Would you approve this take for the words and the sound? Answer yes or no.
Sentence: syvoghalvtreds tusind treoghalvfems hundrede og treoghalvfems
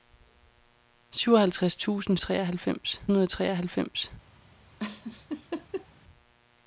no